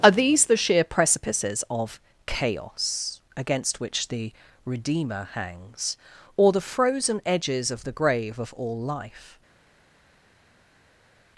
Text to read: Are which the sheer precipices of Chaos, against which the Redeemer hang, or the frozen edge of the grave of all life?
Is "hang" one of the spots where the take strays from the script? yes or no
yes